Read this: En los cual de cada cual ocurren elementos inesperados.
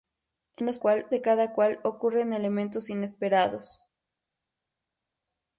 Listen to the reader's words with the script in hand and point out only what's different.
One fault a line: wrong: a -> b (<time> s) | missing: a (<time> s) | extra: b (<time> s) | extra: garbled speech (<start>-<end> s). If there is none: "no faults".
no faults